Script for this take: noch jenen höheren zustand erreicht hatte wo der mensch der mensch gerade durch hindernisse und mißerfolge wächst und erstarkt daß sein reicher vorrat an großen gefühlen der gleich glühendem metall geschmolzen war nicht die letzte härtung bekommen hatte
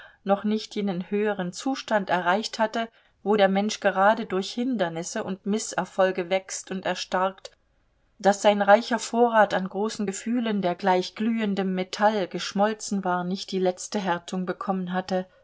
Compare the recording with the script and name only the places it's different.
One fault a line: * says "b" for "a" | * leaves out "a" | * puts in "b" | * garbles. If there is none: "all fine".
* puts in "nicht"
* leaves out "der mensch"